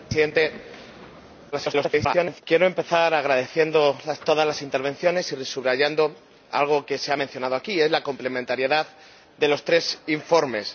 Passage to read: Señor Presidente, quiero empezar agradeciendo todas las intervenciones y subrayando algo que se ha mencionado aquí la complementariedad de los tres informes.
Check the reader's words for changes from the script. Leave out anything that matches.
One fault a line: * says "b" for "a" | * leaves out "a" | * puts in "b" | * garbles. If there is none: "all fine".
* garbles